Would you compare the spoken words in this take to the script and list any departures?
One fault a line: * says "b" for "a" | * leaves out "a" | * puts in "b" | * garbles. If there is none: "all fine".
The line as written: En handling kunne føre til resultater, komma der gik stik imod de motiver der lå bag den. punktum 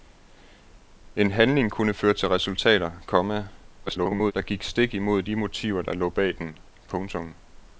* garbles